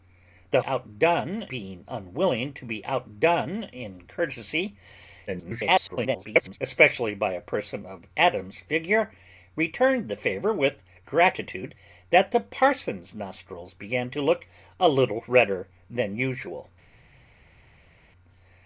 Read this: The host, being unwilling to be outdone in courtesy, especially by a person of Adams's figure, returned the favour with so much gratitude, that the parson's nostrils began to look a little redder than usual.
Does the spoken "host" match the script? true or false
false